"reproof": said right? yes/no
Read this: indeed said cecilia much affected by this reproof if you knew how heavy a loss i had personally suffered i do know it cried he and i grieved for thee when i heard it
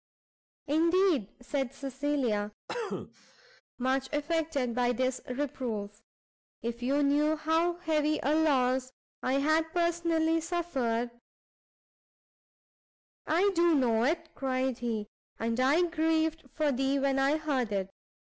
yes